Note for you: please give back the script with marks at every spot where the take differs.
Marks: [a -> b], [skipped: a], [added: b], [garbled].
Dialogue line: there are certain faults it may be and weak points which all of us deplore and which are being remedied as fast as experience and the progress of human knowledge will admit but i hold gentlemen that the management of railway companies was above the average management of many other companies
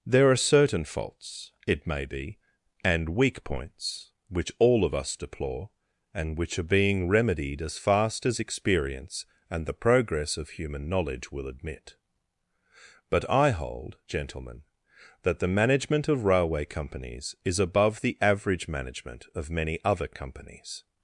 there are certain faults it may be and weak points which all of us deplore and which are being remedied as fast as experience and the progress of human knowledge will admit but i hold gentlemen that the management of railway companies [was -> is] above the average management of many other companies